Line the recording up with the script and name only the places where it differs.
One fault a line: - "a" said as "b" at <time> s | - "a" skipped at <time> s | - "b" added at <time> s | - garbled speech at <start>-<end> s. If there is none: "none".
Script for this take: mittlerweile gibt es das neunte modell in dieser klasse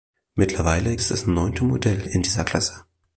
- "gibt" skipped at 1.0 s